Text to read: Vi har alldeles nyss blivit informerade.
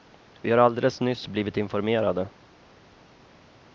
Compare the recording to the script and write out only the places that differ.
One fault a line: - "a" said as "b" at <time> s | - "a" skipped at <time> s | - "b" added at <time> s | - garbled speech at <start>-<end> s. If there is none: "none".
none